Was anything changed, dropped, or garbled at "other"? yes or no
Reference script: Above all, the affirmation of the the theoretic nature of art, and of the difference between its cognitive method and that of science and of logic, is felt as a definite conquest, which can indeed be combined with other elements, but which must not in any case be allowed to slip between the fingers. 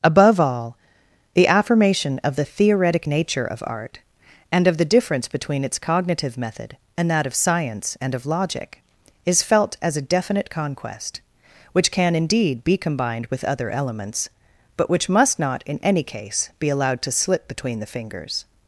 no